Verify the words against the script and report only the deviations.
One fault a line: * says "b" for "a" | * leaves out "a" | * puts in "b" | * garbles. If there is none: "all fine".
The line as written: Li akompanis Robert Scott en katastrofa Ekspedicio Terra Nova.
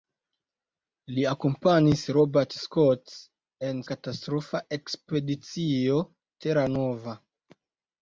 all fine